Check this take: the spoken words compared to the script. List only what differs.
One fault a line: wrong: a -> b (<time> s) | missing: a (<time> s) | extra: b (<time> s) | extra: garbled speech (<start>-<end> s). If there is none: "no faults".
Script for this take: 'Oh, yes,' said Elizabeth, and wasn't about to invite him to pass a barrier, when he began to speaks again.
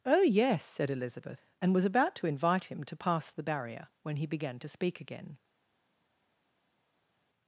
wrong: wasn't -> was (1.7 s)
wrong: a -> the (3.3 s)
wrong: speaks -> speak (4.7 s)